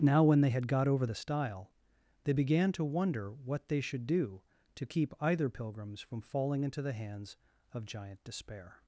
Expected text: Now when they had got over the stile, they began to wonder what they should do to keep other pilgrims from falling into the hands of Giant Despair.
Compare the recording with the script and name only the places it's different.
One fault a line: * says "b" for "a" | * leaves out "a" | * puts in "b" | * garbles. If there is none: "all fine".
* says "either" for "other"